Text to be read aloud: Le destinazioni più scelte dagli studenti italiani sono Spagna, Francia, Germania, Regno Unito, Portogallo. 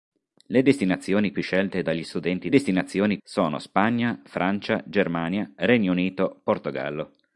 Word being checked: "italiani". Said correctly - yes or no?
no